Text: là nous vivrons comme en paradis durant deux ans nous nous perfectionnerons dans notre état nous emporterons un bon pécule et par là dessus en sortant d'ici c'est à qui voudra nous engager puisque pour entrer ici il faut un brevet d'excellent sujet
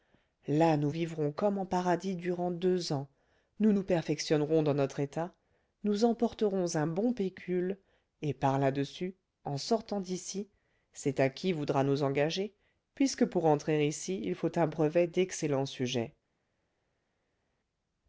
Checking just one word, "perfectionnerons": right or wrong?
right